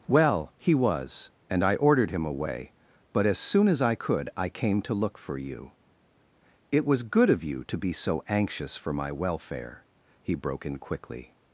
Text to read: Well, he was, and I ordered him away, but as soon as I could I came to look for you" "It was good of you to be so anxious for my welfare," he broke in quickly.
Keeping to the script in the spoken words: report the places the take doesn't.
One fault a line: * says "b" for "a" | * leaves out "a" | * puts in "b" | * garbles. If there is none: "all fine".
all fine